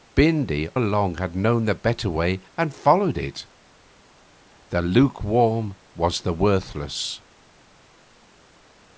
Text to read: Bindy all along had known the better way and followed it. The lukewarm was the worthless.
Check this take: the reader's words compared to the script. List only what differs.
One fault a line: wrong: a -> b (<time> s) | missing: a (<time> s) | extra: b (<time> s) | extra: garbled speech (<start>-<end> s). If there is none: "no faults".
missing: all (0.7 s)